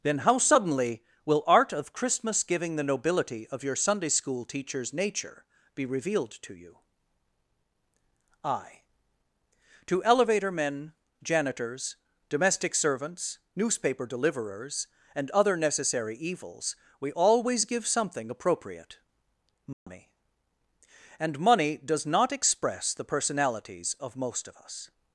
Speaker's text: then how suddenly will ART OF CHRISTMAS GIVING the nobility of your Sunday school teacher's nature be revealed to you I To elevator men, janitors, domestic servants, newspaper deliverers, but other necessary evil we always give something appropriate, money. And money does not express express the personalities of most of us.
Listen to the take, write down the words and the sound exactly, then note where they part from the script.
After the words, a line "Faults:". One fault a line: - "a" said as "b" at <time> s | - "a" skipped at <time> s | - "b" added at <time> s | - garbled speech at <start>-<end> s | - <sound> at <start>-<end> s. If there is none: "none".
then how suddenly will ART OF CHRISTMAS GIVING the nobility of your Sunday school teacher's nature be revealed to you I To elevator men, janitors, domestic servants, newspaper deliverers, and other necessary evils we always give something appropriate, money. And money does not express the personalities of most of us.
Faults:
- "but" said as "and" at 15.1 s
- "evil" said as "evils" at 16.2 s
- dropout at 19.7-19.9 s
- "express" skipped at 22.9 s